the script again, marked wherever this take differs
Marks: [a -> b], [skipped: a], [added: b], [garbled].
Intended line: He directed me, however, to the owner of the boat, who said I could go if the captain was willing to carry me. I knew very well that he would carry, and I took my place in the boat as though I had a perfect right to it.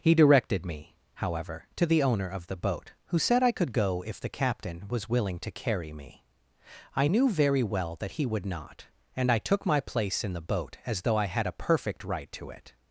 He directed me, however, to the owner of the boat, who said I could go if the captain was willing to carry me. I knew very well that he would [carry, -> not] and I took my place in the boat as though I had a perfect right to it.